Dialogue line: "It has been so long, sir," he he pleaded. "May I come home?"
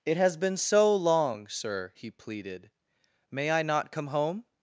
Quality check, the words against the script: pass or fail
fail